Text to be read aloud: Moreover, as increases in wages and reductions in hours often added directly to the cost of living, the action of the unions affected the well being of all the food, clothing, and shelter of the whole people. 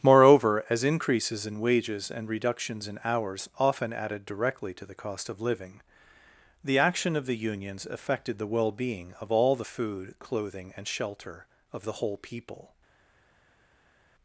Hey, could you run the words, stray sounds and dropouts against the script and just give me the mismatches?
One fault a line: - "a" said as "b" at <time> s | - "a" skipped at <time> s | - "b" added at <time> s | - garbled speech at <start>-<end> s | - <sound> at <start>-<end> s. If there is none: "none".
none